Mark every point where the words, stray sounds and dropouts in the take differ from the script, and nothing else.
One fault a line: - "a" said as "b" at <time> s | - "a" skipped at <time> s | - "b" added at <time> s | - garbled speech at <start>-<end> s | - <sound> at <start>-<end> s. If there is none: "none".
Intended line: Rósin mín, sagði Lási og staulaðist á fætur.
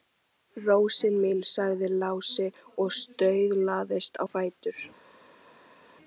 none